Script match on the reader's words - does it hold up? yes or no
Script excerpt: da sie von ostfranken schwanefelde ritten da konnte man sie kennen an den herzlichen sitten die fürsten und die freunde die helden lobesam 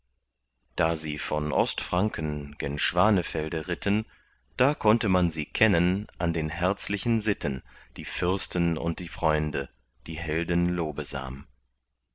no